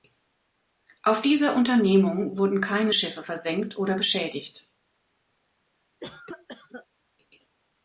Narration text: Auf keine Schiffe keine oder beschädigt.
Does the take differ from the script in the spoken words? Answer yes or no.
yes